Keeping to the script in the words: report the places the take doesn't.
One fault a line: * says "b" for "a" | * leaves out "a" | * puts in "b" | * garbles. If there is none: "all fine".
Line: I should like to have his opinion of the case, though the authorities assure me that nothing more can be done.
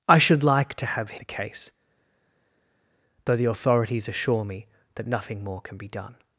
* leaves out "his opinion of"